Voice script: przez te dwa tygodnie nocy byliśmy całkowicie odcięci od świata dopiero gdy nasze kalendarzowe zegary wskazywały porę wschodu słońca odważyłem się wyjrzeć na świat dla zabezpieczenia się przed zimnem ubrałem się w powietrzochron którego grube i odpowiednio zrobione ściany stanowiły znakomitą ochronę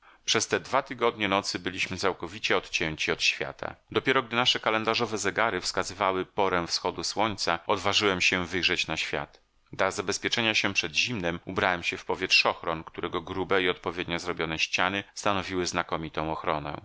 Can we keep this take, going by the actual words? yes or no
yes